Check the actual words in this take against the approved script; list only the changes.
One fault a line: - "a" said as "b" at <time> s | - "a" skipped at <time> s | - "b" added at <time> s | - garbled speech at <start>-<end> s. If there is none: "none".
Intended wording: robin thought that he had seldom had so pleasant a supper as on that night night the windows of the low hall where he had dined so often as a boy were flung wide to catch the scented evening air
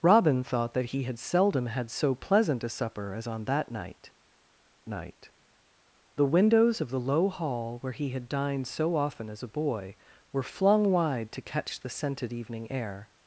none